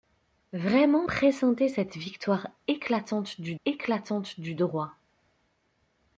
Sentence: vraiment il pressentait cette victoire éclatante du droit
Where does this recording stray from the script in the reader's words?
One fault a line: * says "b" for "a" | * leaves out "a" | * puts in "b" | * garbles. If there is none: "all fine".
* leaves out "il"
* puts in "éclatante du"